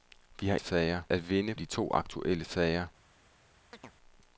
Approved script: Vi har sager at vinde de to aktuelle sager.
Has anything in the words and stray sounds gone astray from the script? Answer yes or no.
yes